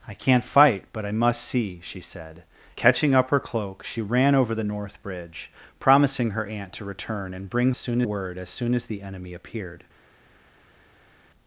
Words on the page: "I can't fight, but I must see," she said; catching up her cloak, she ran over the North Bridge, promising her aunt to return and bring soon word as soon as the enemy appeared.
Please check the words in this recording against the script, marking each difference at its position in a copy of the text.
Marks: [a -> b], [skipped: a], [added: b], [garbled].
"I can't fight, but I must see," she said; catching up her cloak, she ran over the North Bridge, promising her aunt to return and bring soon word as soon as the enemy appeared.